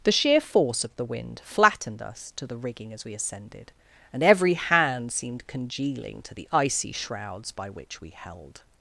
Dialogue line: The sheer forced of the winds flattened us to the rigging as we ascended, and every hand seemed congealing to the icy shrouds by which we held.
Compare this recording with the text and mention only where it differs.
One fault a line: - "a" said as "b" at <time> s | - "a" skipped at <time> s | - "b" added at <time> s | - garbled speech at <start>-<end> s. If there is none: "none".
- "forced" said as "force" at 0.4 s
- "winds" said as "wind" at 1.1 s